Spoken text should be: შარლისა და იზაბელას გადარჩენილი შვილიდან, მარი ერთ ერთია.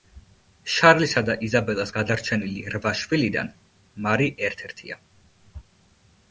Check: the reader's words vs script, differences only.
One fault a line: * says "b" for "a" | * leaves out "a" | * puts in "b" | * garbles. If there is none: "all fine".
* puts in "რვა"